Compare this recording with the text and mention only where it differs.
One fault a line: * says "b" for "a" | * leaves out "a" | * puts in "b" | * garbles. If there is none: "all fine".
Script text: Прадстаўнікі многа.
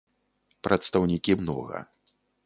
all fine